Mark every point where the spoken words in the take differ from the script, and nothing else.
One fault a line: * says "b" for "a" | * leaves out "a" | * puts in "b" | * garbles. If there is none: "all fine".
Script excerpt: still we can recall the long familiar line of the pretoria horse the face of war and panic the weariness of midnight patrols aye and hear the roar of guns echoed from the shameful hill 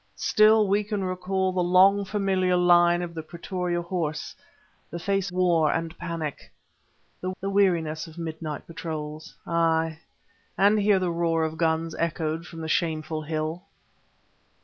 * leaves out "of"
* puts in "the"